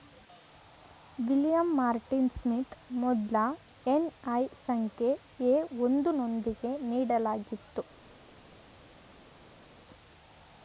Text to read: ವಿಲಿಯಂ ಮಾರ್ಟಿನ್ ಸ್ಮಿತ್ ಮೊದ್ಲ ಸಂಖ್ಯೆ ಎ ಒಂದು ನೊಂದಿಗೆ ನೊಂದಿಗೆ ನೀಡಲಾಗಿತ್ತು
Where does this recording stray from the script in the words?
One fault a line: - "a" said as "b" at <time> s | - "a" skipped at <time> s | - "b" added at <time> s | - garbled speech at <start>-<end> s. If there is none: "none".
- "ಎನ್.ಐ" added at 3.9 s
- "ನೊಂದಿಗೆ" skipped at 6.7 s